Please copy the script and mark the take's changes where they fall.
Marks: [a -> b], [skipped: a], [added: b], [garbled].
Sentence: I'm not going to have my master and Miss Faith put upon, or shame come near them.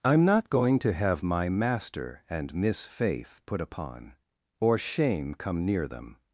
I'm not going to have my master and Miss Faith put upon, or shame come near them.